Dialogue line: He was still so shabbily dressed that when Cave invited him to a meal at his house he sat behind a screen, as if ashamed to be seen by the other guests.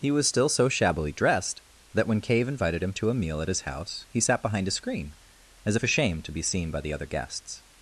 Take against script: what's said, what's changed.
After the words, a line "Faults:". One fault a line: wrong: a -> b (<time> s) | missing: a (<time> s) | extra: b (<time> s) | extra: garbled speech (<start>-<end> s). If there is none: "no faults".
He was still so shabbily dressed that when Cave invited him to a meal at his house he sat behind a screen, as if ashamed to be seen by the other guests.
Faults:
no faults